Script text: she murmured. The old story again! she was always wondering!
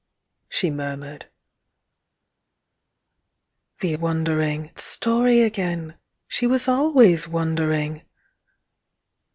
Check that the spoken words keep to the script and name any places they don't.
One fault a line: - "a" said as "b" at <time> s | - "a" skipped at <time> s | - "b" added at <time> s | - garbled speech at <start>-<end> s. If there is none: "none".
- "old" said as "wondering" at 4.0 s